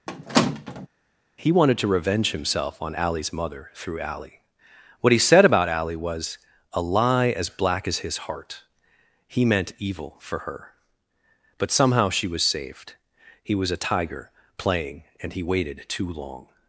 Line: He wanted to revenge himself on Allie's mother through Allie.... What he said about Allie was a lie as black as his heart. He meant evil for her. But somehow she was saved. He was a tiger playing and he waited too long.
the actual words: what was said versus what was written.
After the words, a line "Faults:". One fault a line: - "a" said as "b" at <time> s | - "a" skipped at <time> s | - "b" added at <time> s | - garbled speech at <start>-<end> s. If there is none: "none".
He wanted to revenge himself on Allie's mother through Allie.... What he said about Allie was a lie as black as his heart. He meant evil for her. But somehow she was saved. He was a tiger playing and he waited too long.
Faults:
none